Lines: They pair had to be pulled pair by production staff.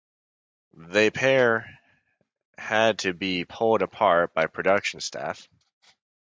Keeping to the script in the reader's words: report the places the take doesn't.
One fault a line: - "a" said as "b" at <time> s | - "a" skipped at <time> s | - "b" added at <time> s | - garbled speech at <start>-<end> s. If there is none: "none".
- "pair" said as "apart" at 3.8 s